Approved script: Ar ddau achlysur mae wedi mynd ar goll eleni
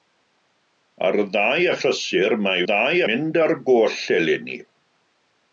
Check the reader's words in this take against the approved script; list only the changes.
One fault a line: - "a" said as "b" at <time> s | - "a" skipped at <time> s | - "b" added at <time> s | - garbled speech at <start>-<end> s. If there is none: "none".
- "wedi" said as "ddau" at 2.7 s